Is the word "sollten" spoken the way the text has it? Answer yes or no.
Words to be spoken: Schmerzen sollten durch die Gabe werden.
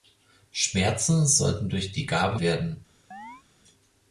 yes